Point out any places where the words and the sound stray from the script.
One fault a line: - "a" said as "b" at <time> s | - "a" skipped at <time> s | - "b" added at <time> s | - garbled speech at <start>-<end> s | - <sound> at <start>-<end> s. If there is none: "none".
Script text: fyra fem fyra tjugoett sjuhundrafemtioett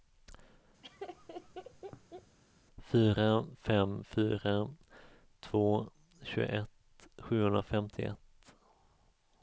- laugh at 0.8-2.4 s
- "två" added at 5.4 s